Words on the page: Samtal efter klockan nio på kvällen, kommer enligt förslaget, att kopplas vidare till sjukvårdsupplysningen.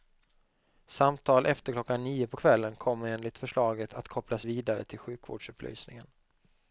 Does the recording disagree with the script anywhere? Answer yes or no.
no